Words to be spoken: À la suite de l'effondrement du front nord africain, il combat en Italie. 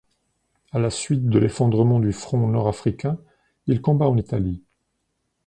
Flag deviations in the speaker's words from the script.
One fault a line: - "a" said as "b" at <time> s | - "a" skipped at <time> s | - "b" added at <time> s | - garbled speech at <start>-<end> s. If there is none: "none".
none